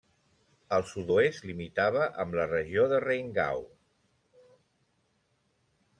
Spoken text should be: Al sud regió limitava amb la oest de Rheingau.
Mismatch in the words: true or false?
true